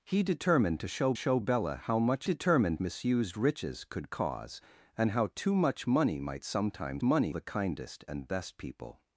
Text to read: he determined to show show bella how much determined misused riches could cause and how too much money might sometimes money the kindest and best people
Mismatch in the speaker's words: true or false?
false